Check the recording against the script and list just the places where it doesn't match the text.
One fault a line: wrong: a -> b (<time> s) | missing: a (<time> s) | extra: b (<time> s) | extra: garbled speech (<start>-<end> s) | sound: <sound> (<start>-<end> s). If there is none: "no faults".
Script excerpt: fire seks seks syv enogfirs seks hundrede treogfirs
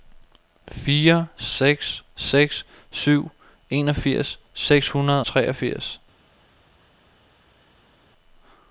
no faults